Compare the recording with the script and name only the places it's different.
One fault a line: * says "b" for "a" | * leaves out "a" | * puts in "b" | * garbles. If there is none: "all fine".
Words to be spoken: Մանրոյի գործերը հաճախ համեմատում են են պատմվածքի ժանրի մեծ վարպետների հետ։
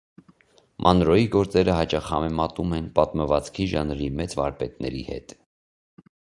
* leaves out "են"